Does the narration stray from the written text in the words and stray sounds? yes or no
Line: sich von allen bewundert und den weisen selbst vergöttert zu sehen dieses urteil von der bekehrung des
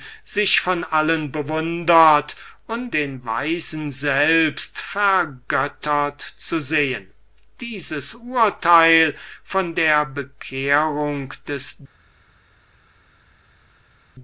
no